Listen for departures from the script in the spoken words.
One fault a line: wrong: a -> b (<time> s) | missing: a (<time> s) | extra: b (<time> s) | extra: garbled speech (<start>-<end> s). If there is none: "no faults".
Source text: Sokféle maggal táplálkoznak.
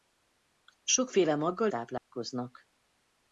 no faults